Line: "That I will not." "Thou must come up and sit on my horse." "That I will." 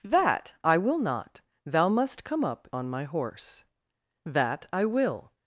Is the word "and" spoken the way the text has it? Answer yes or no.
no